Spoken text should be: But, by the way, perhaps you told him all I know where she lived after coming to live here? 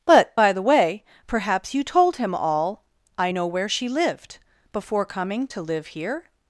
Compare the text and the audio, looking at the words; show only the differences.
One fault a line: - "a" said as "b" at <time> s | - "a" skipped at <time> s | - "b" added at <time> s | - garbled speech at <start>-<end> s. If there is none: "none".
- "after" said as "before" at 4.7 s